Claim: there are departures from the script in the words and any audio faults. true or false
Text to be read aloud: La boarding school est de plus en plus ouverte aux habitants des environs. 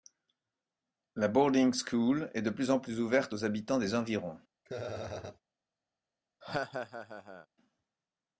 true